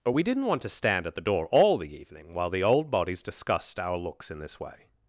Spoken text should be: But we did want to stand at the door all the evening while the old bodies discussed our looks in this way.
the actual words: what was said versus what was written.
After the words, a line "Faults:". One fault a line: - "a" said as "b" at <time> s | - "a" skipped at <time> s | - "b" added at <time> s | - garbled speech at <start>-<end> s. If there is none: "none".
But we didn't want to stand at the door all the evening while the old bodies discussed our looks in this way.
Faults:
- "did" said as "didn't" at 0.2 s